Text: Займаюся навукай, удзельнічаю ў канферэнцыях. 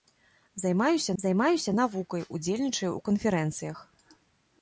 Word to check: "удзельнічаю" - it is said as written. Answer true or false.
true